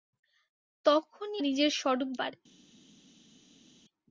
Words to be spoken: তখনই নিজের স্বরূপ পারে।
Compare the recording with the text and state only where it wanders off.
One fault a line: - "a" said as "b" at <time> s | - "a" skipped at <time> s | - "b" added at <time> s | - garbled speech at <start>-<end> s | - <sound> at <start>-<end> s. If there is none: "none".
none